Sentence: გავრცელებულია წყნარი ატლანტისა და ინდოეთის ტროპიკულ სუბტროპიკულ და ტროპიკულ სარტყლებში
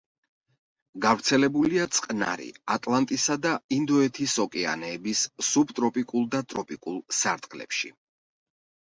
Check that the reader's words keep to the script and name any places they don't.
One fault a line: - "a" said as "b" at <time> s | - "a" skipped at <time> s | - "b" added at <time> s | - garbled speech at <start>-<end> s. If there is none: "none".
- "ტროპიკულ" said as "ოკეანეების" at 4.4 s